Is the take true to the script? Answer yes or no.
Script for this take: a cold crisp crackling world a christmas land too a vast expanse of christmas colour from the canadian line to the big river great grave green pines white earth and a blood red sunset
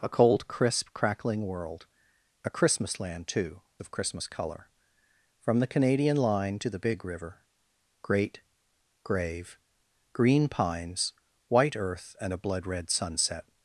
no